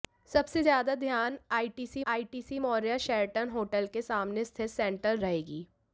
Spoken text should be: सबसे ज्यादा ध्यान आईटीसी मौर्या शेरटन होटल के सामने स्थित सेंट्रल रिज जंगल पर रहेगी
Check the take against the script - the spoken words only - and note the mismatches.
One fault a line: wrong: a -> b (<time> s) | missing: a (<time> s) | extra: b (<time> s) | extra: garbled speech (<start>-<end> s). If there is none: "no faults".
extra: आईटीसी (2.1 s)
missing: रिज जंगल पर (5.2 s)